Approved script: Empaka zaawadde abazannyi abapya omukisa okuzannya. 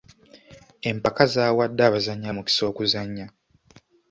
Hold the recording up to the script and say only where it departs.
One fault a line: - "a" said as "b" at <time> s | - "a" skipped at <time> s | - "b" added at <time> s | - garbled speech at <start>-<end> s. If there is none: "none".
- "abapya" skipped at 2.3 s